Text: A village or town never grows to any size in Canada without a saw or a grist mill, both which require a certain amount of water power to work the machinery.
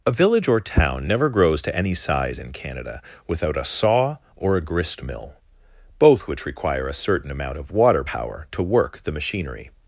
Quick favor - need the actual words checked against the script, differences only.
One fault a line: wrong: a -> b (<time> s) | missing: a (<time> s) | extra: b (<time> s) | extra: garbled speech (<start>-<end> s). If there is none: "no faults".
no faults